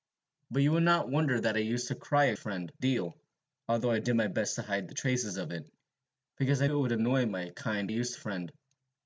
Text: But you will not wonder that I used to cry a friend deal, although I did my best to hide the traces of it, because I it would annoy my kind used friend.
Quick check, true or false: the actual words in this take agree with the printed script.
true